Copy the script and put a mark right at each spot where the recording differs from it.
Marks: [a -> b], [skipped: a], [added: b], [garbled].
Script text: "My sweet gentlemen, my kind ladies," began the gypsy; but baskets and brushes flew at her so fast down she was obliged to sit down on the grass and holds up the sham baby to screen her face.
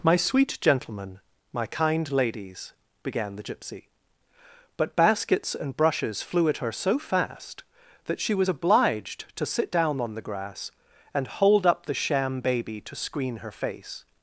"My sweet gentlemen, my kind ladies," began the gypsy; but baskets and brushes flew at her so fast [down -> that] she was obliged to sit down on the grass and [holds -> hold] up the sham baby to screen her face.